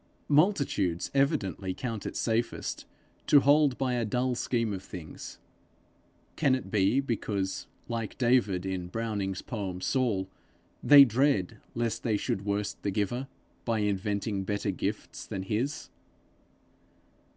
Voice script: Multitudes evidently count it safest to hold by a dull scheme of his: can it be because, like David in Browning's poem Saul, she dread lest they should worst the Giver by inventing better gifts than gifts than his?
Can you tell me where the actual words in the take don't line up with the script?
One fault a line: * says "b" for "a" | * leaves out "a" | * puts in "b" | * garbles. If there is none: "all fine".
* says "things" for "his"
* says "they" for "she"
* leaves out "gifts than"